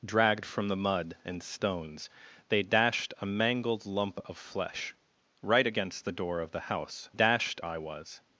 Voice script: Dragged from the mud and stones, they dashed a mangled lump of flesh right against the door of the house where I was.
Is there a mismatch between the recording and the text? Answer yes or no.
yes